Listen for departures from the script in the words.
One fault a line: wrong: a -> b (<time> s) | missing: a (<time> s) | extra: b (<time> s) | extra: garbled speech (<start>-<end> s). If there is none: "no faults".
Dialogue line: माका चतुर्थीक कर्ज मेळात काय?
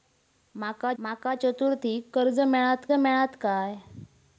extra: माका (1.0 s)
extra: मेळात (2.9 s)